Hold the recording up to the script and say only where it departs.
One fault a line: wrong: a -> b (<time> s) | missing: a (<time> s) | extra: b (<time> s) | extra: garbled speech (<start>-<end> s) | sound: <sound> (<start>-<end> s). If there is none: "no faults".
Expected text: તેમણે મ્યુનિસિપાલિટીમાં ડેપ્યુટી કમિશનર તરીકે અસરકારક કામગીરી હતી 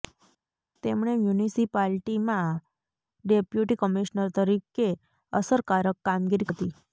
no faults